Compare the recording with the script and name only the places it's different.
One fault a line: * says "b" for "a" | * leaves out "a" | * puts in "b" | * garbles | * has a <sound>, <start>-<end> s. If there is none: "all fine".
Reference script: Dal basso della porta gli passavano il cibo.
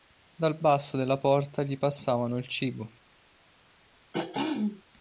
* has a throat clearing, 4.1-4.8 s